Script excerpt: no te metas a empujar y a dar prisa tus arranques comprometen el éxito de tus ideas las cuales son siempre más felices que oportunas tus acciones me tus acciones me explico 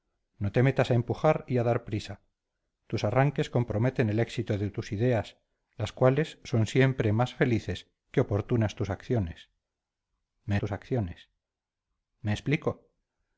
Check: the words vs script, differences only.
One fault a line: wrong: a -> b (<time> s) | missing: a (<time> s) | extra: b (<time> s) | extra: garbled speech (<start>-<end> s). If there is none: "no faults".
no faults